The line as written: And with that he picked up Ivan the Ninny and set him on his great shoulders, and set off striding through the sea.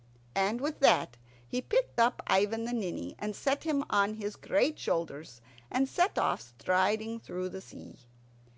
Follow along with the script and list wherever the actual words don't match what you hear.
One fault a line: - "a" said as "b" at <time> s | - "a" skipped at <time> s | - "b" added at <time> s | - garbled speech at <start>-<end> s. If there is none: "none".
none